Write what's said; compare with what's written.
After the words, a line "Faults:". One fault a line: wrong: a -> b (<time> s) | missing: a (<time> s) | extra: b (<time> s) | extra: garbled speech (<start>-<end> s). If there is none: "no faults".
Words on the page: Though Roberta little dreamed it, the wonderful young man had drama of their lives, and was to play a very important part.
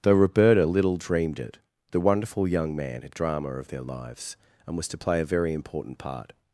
Though Roberta little dreamed it, the wonderful young man had drama of their lives, and was to play a very important part.
Faults:
no faults